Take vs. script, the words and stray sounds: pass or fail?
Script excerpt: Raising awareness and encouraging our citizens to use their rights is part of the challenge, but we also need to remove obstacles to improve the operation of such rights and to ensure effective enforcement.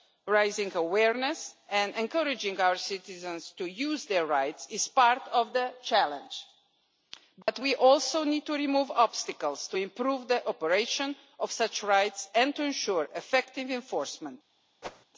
fail